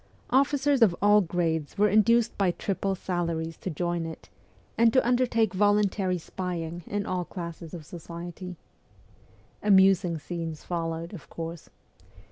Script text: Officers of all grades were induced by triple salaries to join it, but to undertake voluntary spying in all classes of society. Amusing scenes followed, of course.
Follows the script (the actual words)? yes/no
no